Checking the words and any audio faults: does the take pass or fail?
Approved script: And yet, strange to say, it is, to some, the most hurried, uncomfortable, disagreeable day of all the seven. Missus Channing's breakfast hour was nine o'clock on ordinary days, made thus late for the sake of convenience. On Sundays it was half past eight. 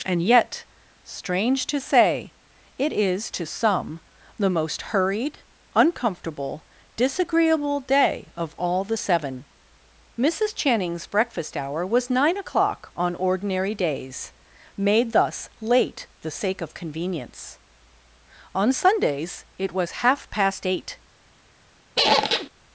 fail